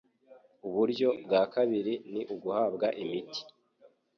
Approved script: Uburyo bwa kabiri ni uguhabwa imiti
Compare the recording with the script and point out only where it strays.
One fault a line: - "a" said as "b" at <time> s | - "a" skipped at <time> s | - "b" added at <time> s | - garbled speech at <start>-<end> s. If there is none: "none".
none